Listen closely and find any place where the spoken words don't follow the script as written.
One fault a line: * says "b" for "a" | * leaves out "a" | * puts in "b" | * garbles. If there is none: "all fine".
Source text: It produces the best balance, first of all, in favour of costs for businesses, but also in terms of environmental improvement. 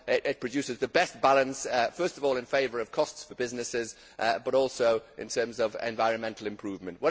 all fine